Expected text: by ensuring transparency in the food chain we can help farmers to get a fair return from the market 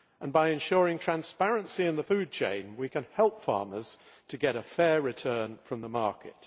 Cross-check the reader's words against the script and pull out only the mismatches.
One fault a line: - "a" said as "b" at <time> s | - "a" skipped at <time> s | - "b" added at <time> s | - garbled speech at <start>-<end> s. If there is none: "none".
none